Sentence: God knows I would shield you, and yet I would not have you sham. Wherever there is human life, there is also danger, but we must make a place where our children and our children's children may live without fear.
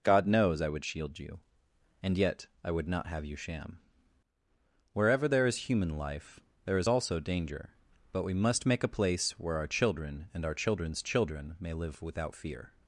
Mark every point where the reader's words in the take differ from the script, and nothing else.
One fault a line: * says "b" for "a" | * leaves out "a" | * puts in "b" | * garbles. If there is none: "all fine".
all fine